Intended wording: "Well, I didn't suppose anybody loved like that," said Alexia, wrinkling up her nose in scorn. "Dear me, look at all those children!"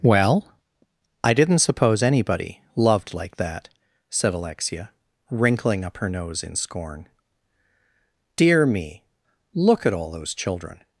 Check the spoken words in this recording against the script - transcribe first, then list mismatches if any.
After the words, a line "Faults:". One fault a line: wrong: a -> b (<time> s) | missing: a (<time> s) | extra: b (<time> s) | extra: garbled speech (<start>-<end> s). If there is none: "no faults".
"Well, I didn't suppose anybody loved like that," said Alexia, wrinkling up her nose in scorn. "Dear me, look at all those children!"
Faults:
no faults